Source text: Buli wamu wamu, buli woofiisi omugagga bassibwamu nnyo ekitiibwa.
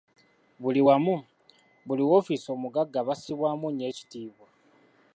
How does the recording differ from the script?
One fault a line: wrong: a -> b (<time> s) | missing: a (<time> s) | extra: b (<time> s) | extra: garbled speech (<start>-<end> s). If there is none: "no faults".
missing: wamu (1.2 s)